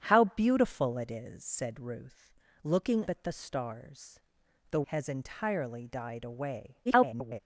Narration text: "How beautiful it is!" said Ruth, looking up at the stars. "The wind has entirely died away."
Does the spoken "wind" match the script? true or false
false